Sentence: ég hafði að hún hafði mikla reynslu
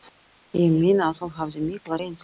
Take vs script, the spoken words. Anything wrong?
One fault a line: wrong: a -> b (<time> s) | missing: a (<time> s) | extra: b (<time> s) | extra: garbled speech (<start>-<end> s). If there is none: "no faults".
wrong: hafði -> meina (0.8 s)